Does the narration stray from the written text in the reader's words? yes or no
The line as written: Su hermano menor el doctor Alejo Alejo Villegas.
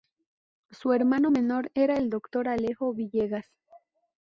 yes